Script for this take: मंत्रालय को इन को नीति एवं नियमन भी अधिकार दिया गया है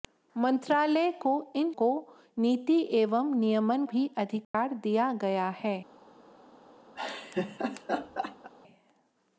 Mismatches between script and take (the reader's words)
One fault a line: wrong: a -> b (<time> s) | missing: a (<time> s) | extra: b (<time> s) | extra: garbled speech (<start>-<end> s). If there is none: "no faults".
no faults